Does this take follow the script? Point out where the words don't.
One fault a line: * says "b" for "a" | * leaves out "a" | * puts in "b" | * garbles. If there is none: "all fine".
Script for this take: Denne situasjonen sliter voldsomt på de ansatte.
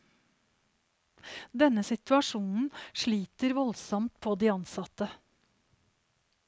all fine